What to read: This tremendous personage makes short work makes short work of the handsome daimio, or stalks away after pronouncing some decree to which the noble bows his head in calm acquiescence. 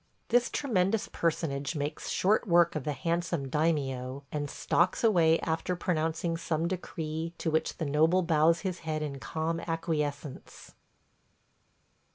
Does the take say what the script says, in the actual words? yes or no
no